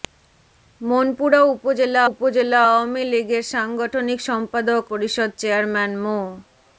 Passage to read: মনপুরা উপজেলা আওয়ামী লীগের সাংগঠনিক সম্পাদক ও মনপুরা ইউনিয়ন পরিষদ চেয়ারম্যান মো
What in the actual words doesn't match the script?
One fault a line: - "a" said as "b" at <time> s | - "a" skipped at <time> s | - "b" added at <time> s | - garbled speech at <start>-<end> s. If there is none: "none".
- "উপজেলা" added at 2.1 s
- "ও মনপুরা ইউনিয়ন" skipped at 4.8 s